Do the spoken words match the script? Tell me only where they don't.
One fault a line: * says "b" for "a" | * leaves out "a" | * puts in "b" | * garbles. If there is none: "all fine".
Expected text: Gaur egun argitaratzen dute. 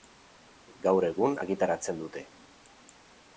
all fine